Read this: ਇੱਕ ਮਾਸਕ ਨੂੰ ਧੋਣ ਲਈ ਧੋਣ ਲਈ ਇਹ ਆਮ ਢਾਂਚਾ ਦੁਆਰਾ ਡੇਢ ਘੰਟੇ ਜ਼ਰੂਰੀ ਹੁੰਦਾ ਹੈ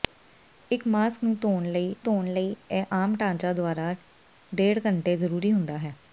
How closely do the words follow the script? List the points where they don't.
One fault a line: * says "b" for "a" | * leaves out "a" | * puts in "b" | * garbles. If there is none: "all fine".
all fine